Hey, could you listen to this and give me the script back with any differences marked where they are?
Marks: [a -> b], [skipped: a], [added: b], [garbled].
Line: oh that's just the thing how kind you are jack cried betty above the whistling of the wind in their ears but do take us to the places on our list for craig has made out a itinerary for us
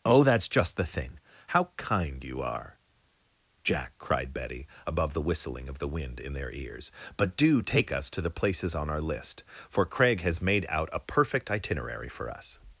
oh that's just the thing how kind you are jack cried betty above the whistling of the wind in their ears but do take us to the places on our list for craig has made out a [added: perfect] itinerary for us